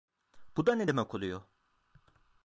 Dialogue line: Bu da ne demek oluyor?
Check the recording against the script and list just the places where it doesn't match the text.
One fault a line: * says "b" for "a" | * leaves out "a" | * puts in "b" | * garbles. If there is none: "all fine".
all fine